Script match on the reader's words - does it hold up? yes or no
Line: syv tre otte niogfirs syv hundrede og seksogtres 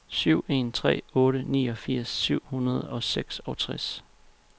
no